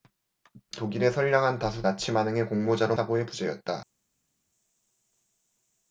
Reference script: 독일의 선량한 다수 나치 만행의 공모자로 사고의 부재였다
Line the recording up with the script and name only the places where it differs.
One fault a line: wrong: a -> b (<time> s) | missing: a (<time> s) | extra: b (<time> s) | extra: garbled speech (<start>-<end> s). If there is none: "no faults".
no faults